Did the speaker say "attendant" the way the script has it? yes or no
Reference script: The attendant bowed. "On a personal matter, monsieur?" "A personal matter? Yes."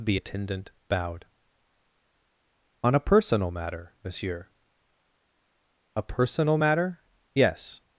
yes